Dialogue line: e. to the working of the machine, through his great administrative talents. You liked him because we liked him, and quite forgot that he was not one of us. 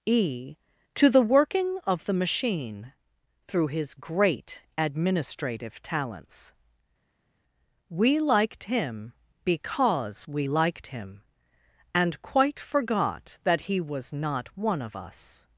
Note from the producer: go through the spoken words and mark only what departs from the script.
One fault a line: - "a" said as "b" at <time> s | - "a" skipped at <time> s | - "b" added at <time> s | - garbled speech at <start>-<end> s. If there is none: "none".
- "You" said as "We" at 7.9 s